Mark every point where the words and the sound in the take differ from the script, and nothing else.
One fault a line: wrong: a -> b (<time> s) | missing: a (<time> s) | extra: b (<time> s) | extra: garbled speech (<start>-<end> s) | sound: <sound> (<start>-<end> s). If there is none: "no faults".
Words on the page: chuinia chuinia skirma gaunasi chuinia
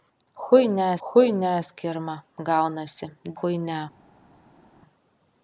no faults